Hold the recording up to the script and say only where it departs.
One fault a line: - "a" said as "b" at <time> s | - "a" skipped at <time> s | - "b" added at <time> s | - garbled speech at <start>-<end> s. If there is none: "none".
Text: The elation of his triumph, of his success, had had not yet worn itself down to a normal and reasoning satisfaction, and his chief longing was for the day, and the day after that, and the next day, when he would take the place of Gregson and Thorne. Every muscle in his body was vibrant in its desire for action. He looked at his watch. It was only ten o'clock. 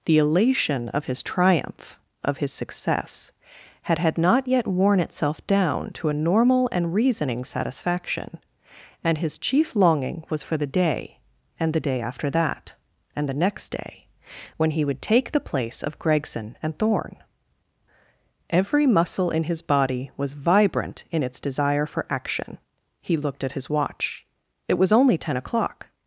none